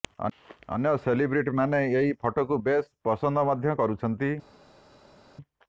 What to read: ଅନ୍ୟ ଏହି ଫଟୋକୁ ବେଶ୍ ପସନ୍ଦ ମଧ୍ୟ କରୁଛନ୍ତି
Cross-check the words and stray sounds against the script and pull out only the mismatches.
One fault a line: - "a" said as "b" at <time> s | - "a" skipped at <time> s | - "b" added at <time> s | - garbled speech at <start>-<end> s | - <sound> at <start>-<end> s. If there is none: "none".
- "ସେଲିବ୍ରିଟିମାନେ" added at 1.0 s